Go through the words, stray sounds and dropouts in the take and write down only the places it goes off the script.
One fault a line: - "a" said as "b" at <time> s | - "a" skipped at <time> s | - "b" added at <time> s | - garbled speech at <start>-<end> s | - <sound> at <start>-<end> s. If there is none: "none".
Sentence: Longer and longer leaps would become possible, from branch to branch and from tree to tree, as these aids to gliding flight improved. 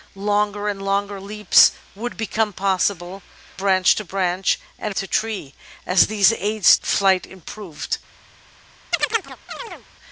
- "from" skipped at 3.2 s
- "from tree" skipped at 4.9 s
- "to gliding" skipped at 6.7 s
- chirp at 8.9-9.9 s